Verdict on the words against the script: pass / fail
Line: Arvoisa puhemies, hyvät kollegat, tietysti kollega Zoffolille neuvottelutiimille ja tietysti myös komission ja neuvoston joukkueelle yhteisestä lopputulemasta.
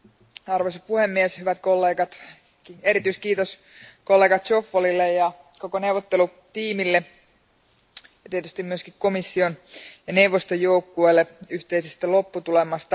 fail